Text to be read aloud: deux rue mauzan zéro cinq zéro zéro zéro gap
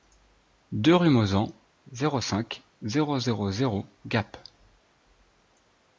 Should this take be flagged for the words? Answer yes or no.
no